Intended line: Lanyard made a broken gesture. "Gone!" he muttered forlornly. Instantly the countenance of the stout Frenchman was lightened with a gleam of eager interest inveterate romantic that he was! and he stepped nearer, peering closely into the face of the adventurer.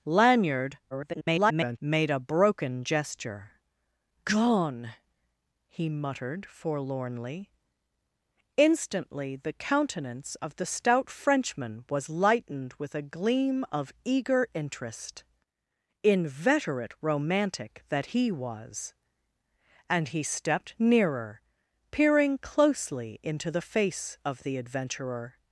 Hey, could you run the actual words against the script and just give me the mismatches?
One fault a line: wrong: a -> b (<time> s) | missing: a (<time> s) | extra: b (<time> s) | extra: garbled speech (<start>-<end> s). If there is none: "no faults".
extra: garbled speech (0.9-1.8 s)